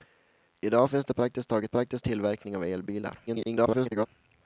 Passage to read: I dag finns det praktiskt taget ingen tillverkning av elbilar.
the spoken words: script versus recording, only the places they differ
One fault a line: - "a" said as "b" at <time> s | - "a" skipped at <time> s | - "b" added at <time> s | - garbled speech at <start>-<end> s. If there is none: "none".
- "ingen" said as "praktiskt" at 1.7 s
- garbled speech at 3.3-4.1 s